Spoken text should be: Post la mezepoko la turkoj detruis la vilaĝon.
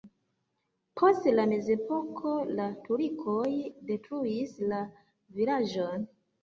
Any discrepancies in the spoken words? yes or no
no